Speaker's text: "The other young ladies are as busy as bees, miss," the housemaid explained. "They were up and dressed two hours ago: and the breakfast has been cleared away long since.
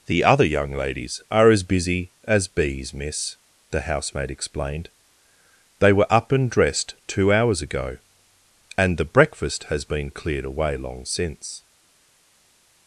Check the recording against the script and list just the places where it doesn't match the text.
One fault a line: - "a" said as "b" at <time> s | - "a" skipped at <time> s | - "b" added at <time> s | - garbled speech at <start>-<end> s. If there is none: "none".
none